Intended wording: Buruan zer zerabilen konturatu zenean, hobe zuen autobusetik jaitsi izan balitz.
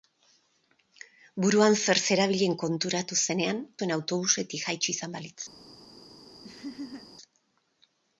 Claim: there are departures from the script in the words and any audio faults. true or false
true